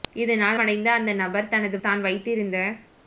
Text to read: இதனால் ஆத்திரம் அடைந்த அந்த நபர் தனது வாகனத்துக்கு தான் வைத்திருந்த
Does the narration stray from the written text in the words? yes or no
yes